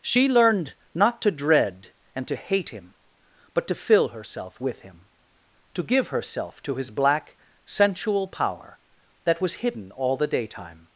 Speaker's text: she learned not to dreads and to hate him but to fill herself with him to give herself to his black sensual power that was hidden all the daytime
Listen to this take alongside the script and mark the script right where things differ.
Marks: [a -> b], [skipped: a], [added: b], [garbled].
she learned not to [dreads -> dread] and to hate him but to fill herself with him to give herself to his black sensual power that was hidden all the daytime